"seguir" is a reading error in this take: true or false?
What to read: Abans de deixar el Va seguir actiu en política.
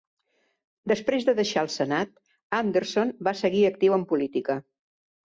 false